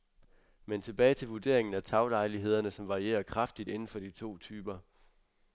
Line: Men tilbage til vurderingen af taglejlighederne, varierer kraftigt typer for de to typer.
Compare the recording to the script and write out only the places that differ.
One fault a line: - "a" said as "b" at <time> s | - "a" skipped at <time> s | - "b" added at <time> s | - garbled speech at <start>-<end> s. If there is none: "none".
- "som" added at 2.7 s
- "typer" said as "inden" at 3.7 s